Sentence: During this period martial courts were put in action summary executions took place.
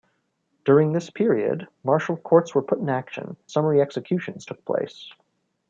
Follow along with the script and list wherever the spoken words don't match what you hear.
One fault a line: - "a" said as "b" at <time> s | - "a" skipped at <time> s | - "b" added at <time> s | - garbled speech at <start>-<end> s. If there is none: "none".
none